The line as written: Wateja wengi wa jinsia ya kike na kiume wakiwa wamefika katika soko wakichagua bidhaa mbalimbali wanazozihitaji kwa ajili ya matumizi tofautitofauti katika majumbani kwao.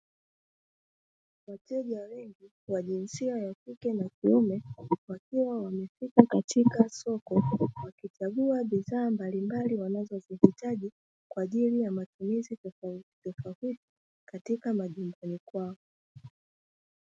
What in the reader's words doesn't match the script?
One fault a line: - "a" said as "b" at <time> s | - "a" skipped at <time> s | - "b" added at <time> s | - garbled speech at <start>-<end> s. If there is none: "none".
none